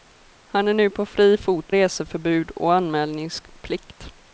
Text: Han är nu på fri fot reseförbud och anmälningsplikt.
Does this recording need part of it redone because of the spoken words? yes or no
no